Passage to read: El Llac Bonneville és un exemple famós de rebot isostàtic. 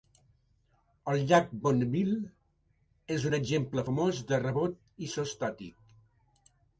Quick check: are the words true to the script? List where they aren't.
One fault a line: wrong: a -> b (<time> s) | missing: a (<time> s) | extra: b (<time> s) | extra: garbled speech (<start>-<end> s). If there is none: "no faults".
no faults